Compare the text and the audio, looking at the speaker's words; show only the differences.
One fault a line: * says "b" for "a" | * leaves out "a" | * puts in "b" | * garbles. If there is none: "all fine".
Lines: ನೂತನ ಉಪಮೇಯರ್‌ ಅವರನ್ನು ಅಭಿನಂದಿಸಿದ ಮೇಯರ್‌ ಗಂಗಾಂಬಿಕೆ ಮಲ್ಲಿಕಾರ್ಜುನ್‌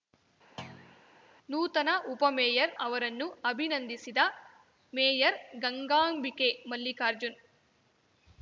all fine